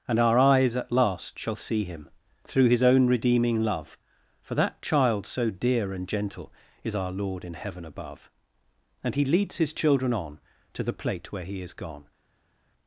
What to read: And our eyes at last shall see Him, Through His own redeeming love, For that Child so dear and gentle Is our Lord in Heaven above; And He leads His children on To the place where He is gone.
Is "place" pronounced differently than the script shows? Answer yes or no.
yes